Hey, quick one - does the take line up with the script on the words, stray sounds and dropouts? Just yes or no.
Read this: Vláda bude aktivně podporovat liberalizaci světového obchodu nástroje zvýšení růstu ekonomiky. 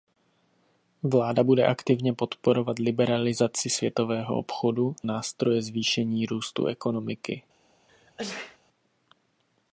no